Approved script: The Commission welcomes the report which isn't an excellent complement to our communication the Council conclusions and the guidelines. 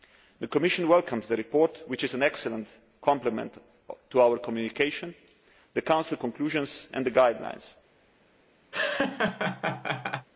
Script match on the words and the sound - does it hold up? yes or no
no